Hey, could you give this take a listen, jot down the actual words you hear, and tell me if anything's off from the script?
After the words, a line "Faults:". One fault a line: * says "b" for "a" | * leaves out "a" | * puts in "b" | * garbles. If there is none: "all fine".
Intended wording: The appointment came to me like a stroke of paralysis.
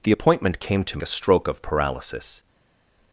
The appointment came to a stroke of paralysis.
Faults:
* leaves out "me like"